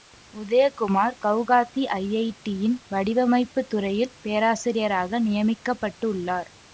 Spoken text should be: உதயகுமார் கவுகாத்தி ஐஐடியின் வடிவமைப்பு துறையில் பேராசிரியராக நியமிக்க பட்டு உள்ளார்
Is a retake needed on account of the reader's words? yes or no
no